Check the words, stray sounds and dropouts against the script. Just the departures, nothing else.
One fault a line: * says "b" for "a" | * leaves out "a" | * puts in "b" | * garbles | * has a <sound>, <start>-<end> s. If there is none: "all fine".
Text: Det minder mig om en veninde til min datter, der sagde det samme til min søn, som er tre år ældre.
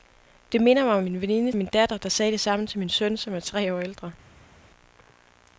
* leaves out "til"